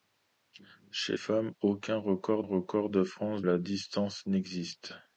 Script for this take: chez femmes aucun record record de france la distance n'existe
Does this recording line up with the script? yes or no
yes